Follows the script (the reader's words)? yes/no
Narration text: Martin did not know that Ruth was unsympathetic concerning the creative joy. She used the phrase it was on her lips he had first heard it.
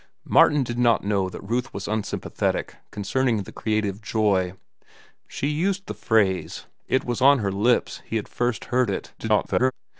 no